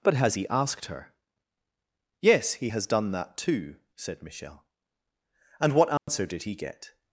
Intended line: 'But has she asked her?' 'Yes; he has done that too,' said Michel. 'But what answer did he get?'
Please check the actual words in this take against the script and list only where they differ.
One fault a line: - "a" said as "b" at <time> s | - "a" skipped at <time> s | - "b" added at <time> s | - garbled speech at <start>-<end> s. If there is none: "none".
- "she" said as "he" at 0.3 s
- "But" said as "And" at 5.6 s